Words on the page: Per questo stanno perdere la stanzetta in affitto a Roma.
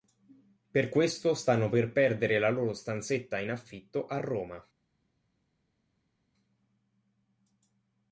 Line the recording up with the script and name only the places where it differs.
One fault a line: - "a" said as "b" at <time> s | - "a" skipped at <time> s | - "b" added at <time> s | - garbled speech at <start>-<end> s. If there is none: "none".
- "per" added at 1.7 s
- "loro" added at 2.5 s